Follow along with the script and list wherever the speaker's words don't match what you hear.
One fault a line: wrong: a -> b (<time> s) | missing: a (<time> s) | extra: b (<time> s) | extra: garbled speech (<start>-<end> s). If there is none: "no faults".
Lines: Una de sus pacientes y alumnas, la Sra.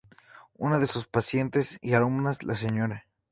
no faults